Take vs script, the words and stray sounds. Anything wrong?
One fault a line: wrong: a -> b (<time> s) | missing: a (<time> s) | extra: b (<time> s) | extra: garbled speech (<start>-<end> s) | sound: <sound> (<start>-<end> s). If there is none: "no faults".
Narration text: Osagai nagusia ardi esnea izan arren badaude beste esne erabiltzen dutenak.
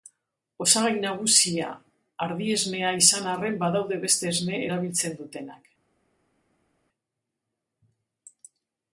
no faults